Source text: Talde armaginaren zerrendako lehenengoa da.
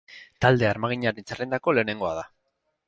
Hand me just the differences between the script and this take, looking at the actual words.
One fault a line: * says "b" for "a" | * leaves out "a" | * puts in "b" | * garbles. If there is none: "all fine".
all fine